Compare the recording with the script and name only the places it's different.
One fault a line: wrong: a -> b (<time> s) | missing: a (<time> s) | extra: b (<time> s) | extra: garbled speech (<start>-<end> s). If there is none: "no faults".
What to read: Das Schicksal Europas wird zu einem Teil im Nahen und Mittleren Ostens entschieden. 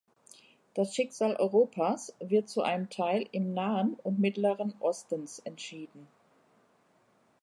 no faults